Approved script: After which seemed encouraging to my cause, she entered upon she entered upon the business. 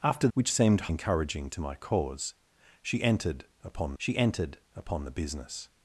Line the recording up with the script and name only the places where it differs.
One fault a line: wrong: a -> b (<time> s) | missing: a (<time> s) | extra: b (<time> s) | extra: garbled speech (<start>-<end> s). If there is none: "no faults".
no faults